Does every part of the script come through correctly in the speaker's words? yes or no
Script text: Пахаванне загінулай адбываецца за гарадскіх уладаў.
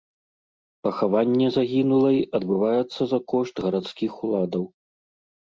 no